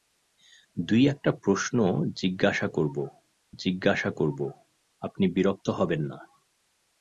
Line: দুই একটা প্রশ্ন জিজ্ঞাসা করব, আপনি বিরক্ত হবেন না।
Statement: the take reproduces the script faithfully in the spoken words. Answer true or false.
false